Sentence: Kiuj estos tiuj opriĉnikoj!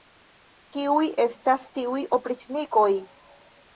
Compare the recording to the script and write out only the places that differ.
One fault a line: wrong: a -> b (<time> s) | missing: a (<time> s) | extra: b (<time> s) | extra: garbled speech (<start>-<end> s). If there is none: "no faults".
wrong: estos -> estas (1.2 s)